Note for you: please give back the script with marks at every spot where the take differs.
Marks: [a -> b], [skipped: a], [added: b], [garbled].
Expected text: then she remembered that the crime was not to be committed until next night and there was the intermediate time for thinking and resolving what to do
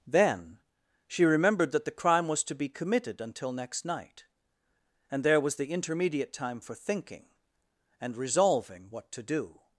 then she remembered that the crime was [skipped: not] to be committed until next night and there was the intermediate time for thinking and resolving what to do